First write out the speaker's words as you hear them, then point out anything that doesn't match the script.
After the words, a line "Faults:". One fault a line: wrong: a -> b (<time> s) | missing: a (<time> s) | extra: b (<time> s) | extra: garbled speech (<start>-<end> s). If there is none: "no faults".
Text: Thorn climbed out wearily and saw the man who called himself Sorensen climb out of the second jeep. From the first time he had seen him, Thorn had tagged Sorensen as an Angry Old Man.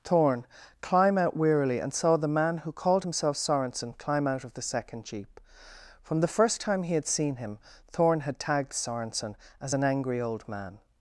Thorn climb out wearily and saw the man who called himself Sorensen climb out of the second jeep. From the first time he had seen him, Thorn had tagged Sorensen as an Angry Old Man.
Faults:
wrong: climbed -> climb (0.8 s)